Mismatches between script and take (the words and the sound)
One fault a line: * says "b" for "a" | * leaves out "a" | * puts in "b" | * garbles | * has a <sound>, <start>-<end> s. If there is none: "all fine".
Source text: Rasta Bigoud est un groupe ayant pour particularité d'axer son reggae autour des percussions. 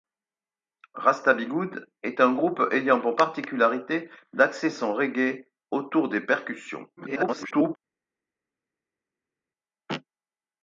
* garbles